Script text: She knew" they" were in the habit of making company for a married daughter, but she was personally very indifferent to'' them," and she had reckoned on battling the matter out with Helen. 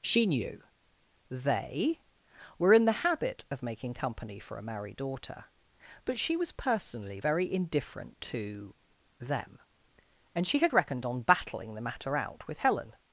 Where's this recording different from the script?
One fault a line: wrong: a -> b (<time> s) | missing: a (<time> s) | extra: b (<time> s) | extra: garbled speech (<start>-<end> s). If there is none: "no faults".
no faults